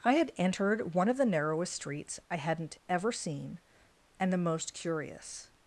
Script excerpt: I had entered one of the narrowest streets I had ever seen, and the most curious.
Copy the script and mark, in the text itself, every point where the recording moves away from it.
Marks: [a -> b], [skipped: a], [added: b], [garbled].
I had entered one of the narrowest streets I [had -> hadn't] ever seen, and the most curious.